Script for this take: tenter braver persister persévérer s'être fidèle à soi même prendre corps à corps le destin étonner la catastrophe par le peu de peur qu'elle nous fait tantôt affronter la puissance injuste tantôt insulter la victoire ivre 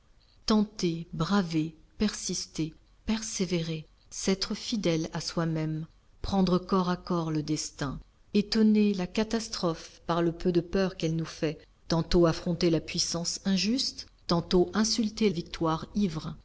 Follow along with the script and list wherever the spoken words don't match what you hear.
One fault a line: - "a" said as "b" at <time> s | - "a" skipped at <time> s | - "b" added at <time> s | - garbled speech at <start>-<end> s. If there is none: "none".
- "la" skipped at 15.3 s